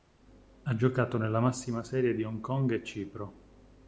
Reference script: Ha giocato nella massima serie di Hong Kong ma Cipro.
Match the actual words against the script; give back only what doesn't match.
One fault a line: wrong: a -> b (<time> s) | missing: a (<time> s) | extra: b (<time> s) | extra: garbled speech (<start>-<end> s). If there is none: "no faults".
wrong: ma -> e (2.7 s)